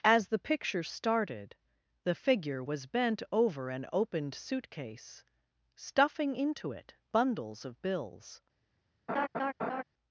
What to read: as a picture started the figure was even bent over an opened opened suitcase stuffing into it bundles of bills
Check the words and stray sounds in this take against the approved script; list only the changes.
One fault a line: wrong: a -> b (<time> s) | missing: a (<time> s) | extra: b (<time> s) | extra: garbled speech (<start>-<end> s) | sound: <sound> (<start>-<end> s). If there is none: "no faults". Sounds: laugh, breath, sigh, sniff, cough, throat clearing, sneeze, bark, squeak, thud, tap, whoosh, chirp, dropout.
wrong: a -> the (0.3 s)
missing: even (2.9 s)
missing: opened (4.3 s)
sound: laugh (9.1-9.8 s)